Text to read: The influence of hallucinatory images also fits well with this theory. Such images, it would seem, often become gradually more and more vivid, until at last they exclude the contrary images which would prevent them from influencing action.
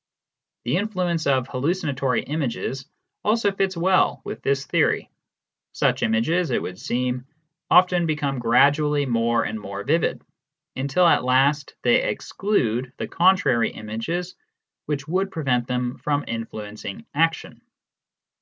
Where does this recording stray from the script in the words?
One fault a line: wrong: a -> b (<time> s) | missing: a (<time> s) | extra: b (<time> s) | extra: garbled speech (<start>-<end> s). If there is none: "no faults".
no faults